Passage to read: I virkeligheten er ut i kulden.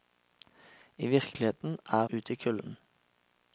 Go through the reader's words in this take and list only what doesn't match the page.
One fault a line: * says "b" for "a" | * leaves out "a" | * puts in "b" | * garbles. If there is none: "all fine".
all fine